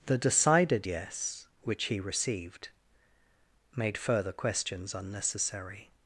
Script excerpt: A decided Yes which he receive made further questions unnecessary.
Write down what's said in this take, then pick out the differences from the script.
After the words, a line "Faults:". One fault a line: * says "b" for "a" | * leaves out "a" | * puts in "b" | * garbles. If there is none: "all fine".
The decided Yes which he received made further questions unnecessary.
Faults:
* says "The" for "A"
* says "received" for "receive"